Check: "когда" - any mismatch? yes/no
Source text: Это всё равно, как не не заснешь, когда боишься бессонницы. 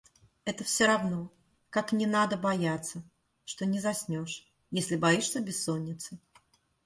yes